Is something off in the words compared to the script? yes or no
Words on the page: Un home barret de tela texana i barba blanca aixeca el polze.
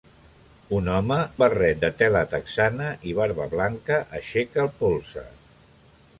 no